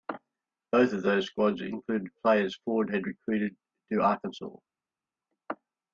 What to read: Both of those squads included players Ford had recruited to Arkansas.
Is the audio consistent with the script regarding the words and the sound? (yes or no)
yes